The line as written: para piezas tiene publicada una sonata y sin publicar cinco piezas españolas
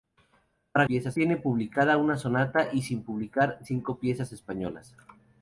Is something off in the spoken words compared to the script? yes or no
no